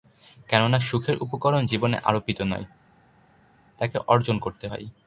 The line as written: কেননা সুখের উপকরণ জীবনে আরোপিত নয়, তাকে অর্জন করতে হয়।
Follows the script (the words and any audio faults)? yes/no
yes